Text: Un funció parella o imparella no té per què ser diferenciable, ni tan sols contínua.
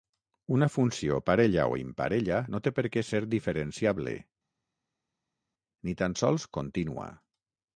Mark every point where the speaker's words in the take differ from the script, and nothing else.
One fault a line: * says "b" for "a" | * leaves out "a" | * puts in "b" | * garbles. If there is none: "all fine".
* says "Una" for "Un"